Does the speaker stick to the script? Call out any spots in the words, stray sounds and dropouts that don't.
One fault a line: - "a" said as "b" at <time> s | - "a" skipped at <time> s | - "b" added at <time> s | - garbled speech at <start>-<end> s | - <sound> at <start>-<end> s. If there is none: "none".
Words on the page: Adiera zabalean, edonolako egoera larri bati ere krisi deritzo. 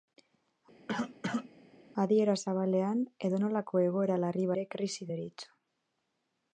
- cough at 0.9-1.5 s
- "bati" skipped at 4.5 s